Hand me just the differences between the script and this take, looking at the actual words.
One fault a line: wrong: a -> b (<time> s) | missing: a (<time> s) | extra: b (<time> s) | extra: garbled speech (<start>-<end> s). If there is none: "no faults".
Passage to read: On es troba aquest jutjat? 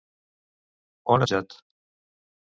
missing: es troba aquest (1.2 s)